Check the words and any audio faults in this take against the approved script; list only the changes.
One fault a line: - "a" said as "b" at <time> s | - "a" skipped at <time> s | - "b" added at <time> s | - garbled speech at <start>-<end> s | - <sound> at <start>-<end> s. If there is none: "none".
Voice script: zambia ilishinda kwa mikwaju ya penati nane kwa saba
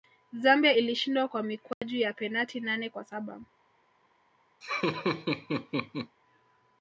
- dropout at 1.7-1.8 s
- laugh at 4.6-6.2 s